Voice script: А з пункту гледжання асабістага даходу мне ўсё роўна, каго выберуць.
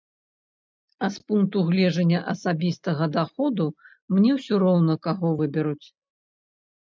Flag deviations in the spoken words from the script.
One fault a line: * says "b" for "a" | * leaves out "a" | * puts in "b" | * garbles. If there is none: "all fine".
all fine